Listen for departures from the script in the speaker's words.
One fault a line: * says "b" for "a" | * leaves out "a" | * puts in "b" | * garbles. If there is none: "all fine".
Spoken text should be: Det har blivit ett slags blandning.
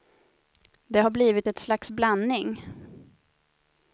all fine